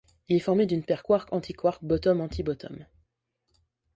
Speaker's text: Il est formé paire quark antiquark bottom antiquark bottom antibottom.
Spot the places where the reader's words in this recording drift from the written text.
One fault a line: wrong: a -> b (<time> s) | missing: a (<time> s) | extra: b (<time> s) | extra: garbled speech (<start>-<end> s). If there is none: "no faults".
extra: d'une (0.7 s)
missing: antiquark bottom (2.2 s)